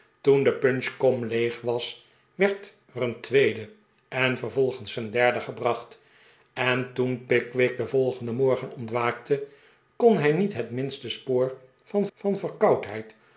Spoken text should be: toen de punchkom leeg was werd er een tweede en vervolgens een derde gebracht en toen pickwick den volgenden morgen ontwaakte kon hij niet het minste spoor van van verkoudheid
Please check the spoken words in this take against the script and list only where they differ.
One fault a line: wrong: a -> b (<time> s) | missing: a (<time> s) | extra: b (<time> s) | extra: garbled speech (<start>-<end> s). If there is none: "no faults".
no faults